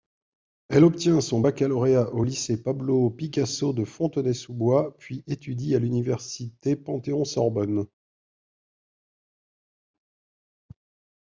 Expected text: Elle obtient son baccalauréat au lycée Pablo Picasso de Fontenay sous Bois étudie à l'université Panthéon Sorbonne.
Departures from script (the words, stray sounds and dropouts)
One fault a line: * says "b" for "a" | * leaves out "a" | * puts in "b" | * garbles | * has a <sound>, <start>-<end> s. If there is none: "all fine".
* puts in "puis"